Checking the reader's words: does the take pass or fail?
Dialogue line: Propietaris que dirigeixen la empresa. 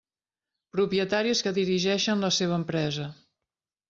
fail